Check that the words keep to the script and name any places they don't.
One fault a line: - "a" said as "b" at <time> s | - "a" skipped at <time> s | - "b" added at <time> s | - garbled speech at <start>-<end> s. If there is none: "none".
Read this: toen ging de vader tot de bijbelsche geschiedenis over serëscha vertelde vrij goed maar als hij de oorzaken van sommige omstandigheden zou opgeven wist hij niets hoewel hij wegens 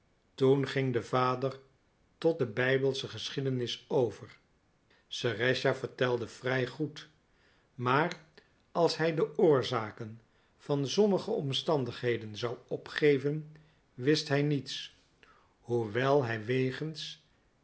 none